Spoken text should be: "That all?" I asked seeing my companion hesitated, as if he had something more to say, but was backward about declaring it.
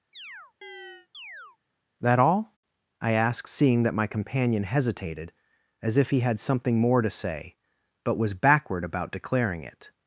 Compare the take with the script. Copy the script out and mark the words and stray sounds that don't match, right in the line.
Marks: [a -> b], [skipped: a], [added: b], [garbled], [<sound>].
[chirp] "That all?" I asked seeing [added: that] my companion hesitated, as if he had something more to say, but was backward about declaring it.